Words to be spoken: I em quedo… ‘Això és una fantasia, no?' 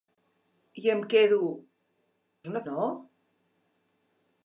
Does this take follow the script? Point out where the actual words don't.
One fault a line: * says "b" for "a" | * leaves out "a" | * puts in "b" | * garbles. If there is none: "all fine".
* leaves out "Això"
* leaves out "fantasia"